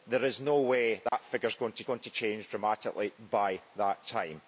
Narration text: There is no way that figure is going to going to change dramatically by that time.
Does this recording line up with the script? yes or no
yes